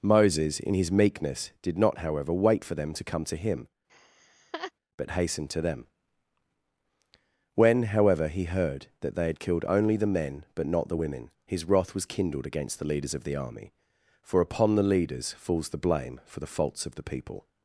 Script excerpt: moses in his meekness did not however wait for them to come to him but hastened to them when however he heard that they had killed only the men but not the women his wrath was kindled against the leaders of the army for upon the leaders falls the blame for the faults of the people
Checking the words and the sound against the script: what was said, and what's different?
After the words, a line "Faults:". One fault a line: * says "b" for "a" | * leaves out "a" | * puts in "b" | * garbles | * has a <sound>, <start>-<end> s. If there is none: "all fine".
moses in his meekness did not however wait for them to come to him but hastened to them when however he heard that they had killed only the men but not the women his wrath was kindled against the leaders of the army for upon the leaders falls the blame for the faults of the people
Faults:
* has a laugh, 3.9-4.7 s